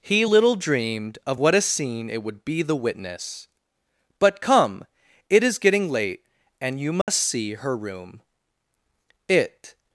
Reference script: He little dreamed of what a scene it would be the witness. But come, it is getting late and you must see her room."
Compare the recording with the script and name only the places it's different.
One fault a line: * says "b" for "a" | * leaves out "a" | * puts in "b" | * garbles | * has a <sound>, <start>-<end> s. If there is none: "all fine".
* has a dropout, 7.0-7.1 s
* puts in "It"